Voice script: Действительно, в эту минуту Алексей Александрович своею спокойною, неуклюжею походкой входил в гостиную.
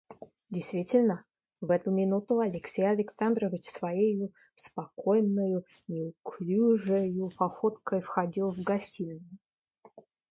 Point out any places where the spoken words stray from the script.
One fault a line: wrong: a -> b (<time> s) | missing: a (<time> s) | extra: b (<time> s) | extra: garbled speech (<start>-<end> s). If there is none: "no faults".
no faults